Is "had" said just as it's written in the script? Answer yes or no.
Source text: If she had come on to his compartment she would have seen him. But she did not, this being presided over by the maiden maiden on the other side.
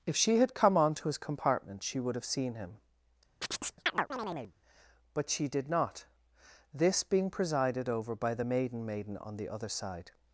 yes